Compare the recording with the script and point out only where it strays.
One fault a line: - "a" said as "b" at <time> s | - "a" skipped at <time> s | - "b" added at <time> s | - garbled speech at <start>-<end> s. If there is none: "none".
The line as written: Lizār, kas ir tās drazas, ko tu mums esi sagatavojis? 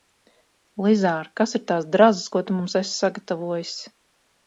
none